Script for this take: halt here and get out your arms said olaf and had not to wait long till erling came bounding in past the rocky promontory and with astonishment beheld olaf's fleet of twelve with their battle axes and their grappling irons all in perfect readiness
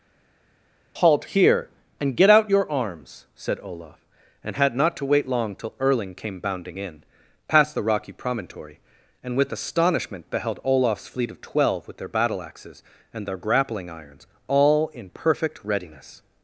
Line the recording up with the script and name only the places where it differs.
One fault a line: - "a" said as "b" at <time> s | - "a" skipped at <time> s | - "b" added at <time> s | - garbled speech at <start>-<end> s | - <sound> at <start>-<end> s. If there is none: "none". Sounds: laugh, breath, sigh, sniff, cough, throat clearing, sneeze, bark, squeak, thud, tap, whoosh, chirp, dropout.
none